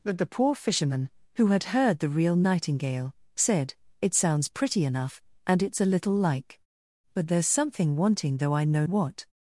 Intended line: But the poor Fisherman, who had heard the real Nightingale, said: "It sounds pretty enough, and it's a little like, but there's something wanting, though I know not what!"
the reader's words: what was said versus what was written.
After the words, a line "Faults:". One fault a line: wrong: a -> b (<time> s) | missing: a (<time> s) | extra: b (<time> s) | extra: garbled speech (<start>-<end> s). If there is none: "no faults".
But the poor Fisherman, who had heard the real Nightingale, said: "It sounds pretty enough, and it's a little like, but there's something wanting, though I know what!"
Faults:
missing: not (8.9 s)